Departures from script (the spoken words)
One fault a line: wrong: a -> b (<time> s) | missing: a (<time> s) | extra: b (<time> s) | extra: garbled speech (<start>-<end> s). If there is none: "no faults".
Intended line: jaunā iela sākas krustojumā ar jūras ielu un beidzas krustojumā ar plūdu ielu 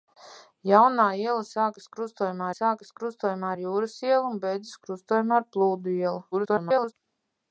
extra: sākas krustojumā (2.5 s)
extra: garbled speech (6.3-6.9 s)